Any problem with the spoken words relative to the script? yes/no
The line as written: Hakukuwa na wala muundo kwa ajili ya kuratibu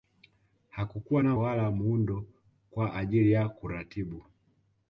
no